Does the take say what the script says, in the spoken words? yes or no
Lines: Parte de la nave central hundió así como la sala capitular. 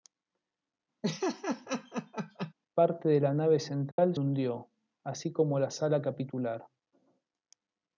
yes